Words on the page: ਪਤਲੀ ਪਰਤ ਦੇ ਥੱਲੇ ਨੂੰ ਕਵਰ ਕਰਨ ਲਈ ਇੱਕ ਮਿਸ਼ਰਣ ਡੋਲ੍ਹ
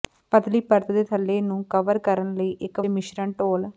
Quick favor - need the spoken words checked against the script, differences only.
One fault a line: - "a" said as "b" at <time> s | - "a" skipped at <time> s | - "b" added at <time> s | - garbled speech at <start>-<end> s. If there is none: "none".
none